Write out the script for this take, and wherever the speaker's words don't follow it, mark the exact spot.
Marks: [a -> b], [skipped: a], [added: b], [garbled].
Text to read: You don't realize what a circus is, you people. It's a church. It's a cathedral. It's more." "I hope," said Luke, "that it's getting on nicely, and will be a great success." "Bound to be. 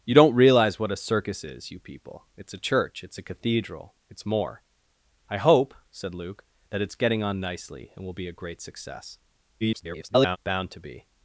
You don't realize what a circus is, you people. It's a church. It's a cathedral. It's more." "I hope," said Luke, "that it's getting on nicely, and will be a great success." [garbled] "Bound to be.